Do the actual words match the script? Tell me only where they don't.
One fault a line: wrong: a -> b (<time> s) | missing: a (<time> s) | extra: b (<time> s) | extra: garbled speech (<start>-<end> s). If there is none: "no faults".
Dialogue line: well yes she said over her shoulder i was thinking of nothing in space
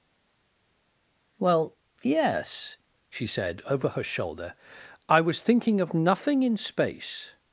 no faults